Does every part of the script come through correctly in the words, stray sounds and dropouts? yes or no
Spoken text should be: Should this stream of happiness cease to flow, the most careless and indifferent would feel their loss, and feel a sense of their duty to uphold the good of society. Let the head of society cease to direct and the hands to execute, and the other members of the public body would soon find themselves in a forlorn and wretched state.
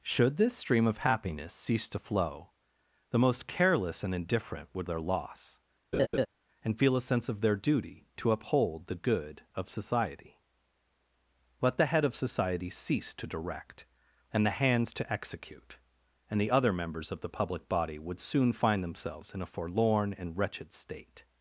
no